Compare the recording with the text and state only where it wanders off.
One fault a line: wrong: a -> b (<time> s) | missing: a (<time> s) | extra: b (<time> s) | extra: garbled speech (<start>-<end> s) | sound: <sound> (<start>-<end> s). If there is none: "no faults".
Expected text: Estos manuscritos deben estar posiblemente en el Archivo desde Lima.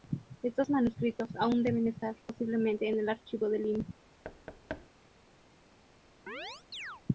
extra: aún (1.4 s)
wrong: desde -> de (3.5 s)
sound: thud (4.2-4.9 s)
sound: chirp (6.3-7.0 s)